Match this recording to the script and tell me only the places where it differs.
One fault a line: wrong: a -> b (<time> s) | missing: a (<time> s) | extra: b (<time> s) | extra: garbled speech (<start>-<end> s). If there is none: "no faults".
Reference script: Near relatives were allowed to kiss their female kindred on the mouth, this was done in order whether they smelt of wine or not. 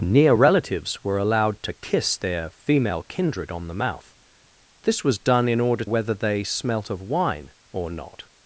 no faults